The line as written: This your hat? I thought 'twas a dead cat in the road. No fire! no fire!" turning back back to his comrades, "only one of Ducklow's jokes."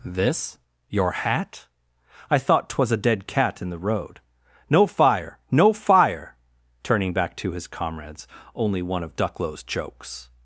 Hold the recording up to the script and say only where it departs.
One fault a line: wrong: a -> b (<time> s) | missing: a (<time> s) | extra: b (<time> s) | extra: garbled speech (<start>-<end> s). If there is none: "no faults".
missing: back (7.3 s)